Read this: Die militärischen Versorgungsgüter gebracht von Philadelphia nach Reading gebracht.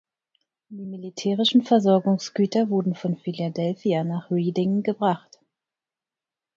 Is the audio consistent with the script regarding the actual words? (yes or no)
no